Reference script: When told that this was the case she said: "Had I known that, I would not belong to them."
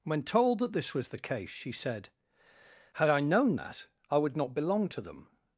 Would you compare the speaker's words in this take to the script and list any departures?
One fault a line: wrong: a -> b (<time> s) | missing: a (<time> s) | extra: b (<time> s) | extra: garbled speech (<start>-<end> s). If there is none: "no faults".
no faults